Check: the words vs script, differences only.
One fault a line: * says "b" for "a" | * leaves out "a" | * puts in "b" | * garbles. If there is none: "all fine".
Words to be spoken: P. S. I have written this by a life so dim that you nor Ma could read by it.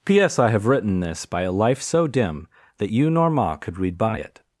all fine